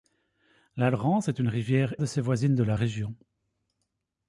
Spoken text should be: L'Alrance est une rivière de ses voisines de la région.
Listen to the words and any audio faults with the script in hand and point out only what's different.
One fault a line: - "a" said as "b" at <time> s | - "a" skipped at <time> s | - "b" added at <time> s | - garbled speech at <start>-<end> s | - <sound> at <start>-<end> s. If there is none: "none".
none